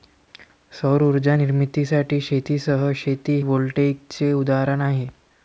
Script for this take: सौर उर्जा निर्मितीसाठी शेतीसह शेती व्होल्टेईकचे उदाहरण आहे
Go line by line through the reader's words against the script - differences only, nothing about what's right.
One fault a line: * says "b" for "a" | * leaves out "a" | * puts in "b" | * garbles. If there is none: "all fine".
all fine